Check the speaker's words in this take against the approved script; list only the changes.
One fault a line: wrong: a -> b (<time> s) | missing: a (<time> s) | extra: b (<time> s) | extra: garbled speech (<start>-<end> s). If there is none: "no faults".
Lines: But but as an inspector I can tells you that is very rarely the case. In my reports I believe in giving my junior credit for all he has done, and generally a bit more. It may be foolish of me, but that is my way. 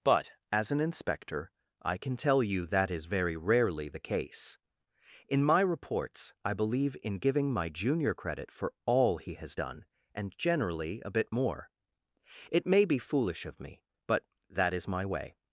missing: but (0.3 s)
wrong: tells -> tell (2.1 s)